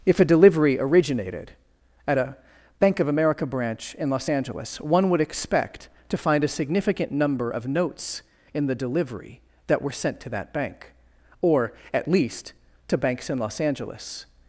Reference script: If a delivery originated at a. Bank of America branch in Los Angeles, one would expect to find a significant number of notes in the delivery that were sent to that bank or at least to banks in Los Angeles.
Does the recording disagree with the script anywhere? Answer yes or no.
no